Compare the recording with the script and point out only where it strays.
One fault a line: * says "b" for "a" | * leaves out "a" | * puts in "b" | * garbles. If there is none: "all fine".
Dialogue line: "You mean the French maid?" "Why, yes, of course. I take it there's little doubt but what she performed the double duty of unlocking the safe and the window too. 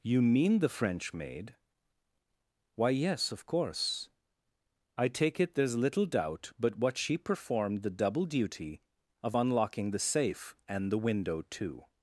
all fine